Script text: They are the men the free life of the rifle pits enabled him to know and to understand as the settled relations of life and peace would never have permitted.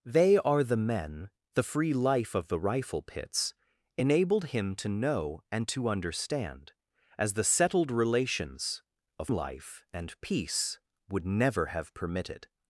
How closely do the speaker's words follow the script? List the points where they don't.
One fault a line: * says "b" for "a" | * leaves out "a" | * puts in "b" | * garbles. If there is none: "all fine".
all fine